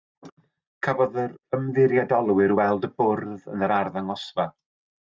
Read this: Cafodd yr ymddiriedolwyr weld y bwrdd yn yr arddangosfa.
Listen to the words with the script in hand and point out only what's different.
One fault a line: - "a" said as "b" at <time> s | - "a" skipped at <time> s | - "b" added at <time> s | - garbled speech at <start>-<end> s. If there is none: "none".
none